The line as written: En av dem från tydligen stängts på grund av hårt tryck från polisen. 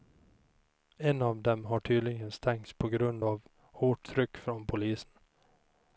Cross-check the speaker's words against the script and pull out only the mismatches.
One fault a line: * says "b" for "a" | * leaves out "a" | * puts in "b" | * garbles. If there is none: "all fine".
* says "har" for "från"